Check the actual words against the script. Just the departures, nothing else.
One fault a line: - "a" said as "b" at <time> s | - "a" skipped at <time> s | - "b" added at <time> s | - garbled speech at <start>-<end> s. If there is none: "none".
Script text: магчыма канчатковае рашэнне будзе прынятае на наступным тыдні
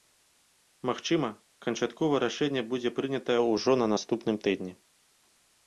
- "ўжо" added at 3.5 s